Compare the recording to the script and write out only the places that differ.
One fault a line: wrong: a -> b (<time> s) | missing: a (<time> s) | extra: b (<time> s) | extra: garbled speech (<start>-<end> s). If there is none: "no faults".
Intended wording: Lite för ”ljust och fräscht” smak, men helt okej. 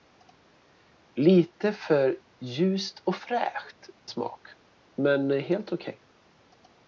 no faults